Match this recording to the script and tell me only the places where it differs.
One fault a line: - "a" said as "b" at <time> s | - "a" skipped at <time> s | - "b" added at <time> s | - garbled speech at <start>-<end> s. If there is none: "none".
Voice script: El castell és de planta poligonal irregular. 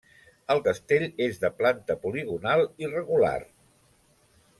none